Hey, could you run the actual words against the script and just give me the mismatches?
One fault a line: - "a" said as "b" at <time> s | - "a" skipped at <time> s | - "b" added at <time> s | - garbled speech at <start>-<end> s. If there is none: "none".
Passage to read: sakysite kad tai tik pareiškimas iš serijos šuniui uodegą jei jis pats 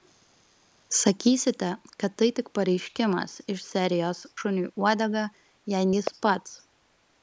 none